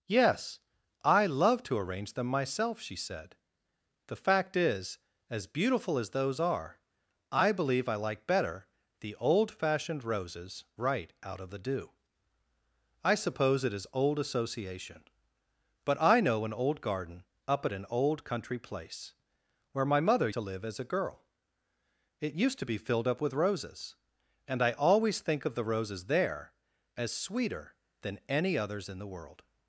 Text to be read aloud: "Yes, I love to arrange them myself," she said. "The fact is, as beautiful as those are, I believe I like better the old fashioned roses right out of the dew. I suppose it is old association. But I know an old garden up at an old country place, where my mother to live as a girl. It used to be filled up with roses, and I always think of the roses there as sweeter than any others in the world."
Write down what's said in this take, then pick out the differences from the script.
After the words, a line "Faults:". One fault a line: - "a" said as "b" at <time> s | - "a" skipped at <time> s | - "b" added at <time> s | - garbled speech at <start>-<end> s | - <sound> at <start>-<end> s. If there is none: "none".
"Yes, I love to arrange them myself," she said. "The fact is, as beautiful as those are, I believe I like better the old fashioned roses right out of the dew. I suppose it is old association. But I know an old garden up at an old country place, where my mother to live as a girl. It used to be filled up with roses, and I always think of the roses there as sweeter than any others in the world."
Faults:
none